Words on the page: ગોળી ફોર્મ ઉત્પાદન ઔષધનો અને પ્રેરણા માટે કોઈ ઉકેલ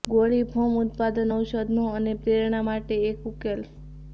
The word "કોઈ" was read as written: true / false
false